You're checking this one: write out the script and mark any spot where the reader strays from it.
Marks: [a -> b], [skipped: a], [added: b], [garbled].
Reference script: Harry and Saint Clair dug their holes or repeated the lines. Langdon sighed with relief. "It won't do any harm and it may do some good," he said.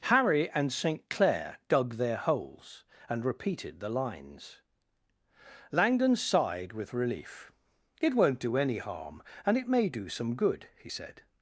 Harry and Saint Clair dug their holes [or -> and] repeated the lines. Langdon sighed with relief. "It won't do any harm and it may do some good," he said.